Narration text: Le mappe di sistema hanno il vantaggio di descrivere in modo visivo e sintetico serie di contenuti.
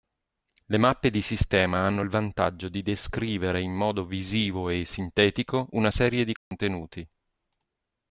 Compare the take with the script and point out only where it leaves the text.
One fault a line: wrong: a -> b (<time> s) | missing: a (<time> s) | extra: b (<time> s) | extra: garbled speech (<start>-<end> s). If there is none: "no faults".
extra: una (5.7 s)